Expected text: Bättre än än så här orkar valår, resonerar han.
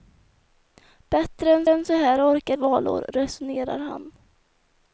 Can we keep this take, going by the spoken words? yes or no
yes